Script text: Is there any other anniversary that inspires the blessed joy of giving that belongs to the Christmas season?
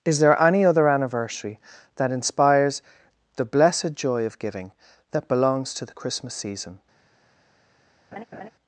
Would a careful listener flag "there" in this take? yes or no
no